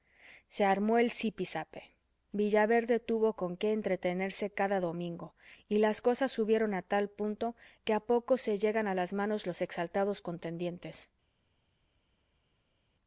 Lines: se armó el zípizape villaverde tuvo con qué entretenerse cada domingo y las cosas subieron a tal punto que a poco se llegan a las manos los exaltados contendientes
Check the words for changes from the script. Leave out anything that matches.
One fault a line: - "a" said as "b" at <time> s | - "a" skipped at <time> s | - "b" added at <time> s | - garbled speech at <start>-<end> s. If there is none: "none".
none